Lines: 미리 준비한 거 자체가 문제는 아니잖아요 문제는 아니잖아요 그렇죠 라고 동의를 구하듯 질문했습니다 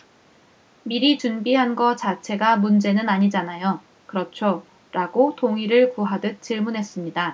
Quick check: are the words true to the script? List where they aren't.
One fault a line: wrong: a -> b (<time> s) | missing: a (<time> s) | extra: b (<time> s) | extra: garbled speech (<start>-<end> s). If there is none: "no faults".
missing: 문제는 아니잖아요 (3.8 s)